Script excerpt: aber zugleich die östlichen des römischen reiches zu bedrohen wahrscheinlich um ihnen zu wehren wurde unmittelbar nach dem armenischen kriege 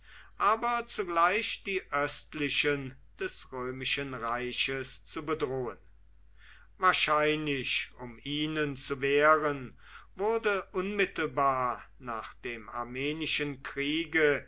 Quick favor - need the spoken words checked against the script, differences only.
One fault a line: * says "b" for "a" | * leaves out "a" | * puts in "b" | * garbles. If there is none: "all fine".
all fine